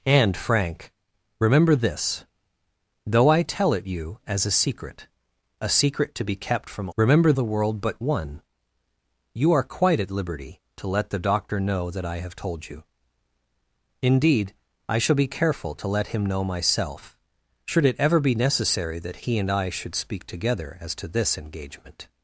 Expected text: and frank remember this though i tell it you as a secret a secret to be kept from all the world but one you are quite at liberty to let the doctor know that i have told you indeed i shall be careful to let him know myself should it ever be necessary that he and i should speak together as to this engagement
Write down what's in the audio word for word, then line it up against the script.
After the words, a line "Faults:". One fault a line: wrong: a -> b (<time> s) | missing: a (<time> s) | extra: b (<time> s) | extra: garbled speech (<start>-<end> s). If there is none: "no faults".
and frank remember this though i tell it you as a secret a secret to be kept from remember the world but one you are quite at liberty to let the doctor know that i have told you indeed i shall be careful to let him know myself should it ever be necessary that he and i should speak together as to this engagement
Faults:
wrong: all -> remember (7.0 s)